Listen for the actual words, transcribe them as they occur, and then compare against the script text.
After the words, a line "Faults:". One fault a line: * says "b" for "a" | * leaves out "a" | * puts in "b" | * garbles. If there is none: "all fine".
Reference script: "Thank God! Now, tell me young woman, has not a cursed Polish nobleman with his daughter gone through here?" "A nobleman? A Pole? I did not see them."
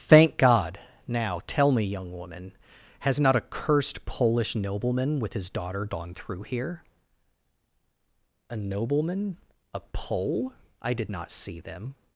"Thank God! Now, tell me young woman, has not a cursed Polish nobleman with his daughter gone through here?" "A nobleman? A Pole? I did not see them."
Faults:
all fine